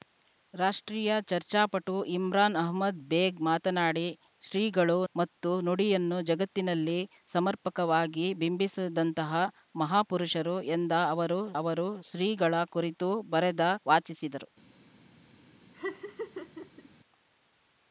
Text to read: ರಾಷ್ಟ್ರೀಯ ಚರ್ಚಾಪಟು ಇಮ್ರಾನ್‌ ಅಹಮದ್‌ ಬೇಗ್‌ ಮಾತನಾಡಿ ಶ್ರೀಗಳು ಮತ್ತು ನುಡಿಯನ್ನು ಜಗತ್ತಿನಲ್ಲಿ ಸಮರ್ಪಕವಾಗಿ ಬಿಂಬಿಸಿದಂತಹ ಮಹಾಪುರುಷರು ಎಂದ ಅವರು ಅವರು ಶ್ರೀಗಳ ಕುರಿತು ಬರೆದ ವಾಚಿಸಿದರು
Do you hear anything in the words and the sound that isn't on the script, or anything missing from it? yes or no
yes